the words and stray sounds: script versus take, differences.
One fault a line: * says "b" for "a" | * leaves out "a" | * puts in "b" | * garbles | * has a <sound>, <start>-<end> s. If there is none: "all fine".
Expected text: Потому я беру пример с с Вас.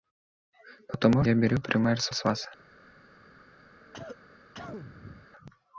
* has a cough, 3.8-5.3 s